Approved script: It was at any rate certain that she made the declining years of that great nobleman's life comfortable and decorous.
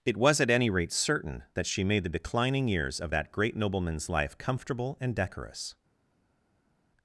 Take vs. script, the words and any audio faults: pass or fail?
pass